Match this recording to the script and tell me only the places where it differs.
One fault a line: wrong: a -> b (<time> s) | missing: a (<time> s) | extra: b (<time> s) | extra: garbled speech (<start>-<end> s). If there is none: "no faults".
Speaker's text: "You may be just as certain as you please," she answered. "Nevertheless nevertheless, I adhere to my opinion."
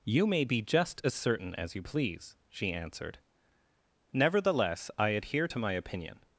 missing: nevertheless (4.9 s)